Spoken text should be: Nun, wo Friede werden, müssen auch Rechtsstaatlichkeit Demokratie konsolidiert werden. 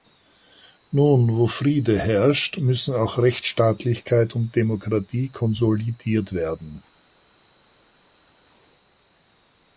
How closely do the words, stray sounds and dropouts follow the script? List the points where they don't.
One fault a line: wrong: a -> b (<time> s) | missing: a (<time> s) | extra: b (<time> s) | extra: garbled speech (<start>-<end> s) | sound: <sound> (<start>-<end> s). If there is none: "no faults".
wrong: werden -> herrscht (2.0 s)
extra: und (4.3 s)